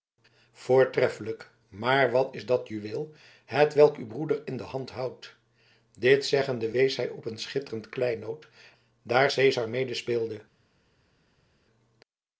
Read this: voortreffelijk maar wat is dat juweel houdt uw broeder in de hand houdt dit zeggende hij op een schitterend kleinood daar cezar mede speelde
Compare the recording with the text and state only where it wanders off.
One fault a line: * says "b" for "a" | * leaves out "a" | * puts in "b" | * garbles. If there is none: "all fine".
* says "hetwelk" for "houdt"
* puts in "wees"